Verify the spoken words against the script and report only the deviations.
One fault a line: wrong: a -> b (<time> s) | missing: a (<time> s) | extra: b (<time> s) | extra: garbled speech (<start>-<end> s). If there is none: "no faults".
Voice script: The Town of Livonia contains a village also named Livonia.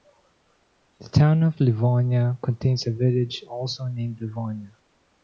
no faults